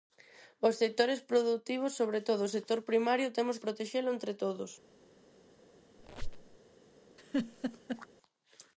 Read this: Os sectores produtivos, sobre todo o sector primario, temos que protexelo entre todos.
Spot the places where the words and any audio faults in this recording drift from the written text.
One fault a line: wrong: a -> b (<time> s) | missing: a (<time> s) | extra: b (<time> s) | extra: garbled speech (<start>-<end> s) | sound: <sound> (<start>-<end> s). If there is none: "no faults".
missing: que (3.6 s)
sound: squeak (6.0-6.6 s)
sound: laugh (7.2-8.1 s)